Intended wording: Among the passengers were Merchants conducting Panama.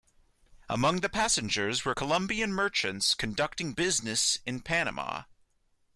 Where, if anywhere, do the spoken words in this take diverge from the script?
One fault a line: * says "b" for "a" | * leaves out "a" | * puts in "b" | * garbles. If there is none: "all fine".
* puts in "Colombian"
* puts in "business in"